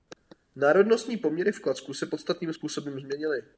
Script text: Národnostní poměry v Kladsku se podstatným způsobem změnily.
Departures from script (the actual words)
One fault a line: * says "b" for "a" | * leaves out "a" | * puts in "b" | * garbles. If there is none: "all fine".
all fine